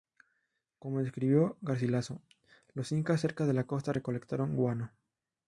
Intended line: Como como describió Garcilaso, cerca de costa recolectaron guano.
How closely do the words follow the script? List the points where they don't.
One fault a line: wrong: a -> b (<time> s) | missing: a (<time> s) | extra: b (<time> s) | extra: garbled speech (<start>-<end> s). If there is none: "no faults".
missing: como (1.0 s)
extra: los incas (2.7 s)
extra: la (3.5 s)